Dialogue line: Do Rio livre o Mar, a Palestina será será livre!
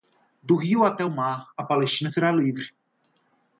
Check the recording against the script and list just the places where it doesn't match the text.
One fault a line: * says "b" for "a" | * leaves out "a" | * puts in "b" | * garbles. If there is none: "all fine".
* says "até" for "livre"
* leaves out "será"